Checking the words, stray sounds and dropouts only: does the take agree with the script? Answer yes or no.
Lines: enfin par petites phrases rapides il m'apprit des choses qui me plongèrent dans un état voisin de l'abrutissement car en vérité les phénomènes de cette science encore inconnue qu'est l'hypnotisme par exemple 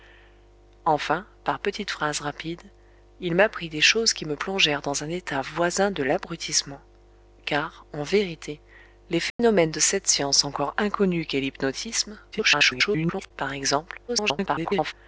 no